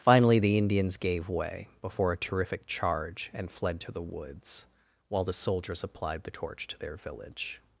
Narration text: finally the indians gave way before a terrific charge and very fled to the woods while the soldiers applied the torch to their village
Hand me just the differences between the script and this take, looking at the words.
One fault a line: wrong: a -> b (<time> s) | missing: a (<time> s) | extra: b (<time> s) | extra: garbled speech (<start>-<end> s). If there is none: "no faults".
missing: very (3.5 s)